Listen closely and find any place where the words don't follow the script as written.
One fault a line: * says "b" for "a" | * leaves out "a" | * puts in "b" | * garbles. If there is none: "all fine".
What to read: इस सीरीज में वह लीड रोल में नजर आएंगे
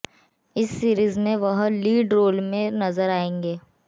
all fine